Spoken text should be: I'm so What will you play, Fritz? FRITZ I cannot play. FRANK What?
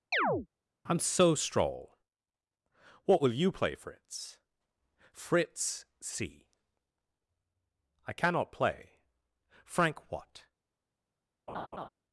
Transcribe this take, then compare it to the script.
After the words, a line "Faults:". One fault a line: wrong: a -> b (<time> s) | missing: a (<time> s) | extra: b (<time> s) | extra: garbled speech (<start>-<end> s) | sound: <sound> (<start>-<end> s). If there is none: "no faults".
I'm so stroll What will you play, Fritz? FRITZ c I cannot play. FRANK What?
Faults:
sound: chirp (0.1-0.5 s)
extra: stroll (1.3 s)
extra: c (6.0 s)
sound: laugh (11.5-11.9 s)